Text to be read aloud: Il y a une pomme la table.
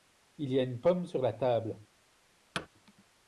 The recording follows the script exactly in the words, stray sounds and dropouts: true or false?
false